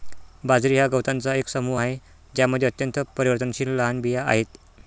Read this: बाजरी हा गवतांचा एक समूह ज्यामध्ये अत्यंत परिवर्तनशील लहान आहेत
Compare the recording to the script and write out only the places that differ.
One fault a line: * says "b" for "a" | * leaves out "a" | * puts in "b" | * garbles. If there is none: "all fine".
* puts in "आहे"
* puts in "बिया"